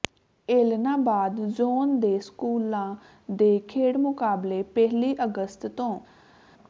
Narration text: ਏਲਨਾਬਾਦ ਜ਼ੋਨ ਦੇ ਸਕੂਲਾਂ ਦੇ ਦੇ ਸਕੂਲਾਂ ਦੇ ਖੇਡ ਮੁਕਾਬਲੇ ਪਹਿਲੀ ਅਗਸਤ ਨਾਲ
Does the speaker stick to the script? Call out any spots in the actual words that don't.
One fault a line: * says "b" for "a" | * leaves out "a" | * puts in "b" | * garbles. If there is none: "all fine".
* leaves out "ਦੇ ਸਕੂਲਾਂ ਦੇ"
* says "ਤੋਂ" for "ਨਾਲ"